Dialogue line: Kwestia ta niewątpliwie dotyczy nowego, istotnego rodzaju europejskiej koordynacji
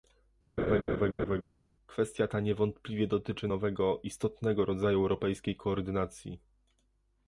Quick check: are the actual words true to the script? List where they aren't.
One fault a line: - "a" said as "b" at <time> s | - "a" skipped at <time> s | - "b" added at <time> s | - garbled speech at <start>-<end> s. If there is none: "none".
none